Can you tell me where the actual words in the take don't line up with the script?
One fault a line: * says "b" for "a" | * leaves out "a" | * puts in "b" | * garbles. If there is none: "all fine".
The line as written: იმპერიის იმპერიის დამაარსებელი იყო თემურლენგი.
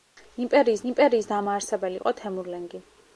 all fine